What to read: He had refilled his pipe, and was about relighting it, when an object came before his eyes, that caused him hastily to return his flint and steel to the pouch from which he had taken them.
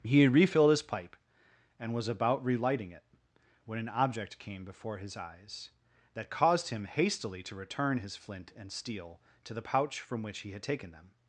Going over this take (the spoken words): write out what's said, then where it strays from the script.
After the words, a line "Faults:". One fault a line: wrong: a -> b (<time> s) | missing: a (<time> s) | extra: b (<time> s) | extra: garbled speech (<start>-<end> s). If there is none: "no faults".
He had refilled his pipe, and was about relighting it, when an object came before his eyes, that caused him hastily to return his flint and steel to the pouch from which he had taken them.
Faults:
no faults